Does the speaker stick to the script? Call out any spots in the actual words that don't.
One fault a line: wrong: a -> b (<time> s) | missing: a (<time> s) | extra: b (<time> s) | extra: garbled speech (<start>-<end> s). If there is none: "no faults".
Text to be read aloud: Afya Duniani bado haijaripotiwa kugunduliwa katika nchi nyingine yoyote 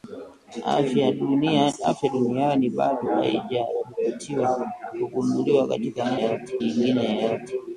wrong: nchi -> yoyote (6.2 s)